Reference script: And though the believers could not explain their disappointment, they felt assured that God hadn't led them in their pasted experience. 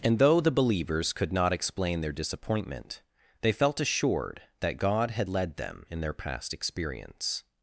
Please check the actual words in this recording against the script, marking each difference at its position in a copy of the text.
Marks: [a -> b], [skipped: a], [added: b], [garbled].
And though the believers could not explain their disappointment, they felt assured that God [hadn't -> had] led them in their [pasted -> past] experience.